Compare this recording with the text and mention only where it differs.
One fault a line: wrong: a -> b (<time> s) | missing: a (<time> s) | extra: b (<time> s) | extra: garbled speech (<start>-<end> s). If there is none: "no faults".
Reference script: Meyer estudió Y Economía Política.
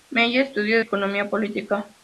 no faults